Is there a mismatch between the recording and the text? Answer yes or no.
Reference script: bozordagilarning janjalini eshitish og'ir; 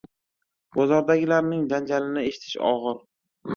no